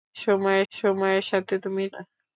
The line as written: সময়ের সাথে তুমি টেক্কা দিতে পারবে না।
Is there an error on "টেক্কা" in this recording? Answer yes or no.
yes